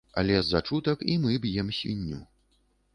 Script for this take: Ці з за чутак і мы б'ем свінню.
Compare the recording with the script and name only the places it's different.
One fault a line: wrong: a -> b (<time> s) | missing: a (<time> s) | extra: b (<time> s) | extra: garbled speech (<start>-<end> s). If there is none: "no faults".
wrong: Ці -> Але (0.2 s)